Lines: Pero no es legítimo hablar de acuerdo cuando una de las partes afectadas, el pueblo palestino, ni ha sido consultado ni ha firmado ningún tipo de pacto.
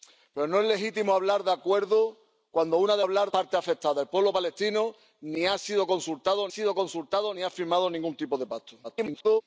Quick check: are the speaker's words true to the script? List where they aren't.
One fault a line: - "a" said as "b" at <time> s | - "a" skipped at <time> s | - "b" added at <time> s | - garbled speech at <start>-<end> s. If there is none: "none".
- "las" said as "hablar" at 3.0 s
- "sido consultado" added at 6.5 s
- garbled speech at 8.8-9.4 s